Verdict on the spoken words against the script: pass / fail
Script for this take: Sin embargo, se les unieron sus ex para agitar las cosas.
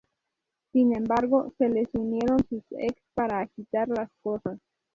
pass